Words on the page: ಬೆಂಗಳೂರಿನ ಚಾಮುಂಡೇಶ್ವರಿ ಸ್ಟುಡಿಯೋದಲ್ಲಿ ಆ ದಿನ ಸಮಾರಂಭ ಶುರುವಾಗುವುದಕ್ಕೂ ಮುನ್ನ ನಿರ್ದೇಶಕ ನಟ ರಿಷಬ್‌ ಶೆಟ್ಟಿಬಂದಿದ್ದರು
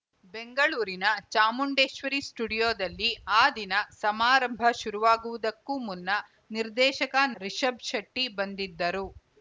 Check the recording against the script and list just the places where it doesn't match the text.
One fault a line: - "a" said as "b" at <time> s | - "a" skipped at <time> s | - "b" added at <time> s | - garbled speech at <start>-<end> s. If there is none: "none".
- "ನಟ" skipped at 7.2 s